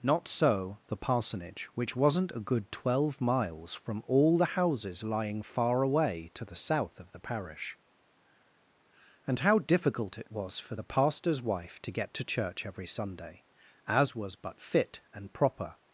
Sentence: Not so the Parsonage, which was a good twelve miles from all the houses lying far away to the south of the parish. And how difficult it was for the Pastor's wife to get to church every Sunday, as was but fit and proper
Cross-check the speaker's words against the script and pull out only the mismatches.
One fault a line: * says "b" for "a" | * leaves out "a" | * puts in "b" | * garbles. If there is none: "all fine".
* says "wasn't" for "was"